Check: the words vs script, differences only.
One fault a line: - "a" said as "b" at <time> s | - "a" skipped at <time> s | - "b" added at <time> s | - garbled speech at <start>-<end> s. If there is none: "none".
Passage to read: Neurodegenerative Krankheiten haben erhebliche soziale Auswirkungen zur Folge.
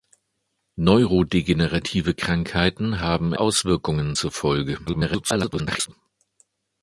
- "erhebliche soziale" skipped at 3.3 s
- garbled speech at 4.9-5.9 s